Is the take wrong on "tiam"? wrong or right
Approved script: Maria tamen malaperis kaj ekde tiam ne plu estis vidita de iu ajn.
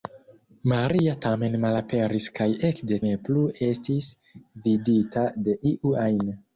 wrong